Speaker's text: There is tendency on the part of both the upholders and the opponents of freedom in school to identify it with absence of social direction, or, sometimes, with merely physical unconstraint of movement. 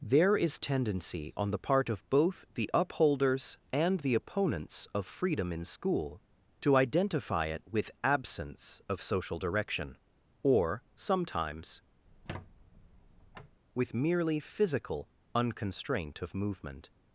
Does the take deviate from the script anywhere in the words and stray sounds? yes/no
yes